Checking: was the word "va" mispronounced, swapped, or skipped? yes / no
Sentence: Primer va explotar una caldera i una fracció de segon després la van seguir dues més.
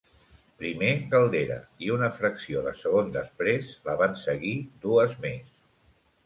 yes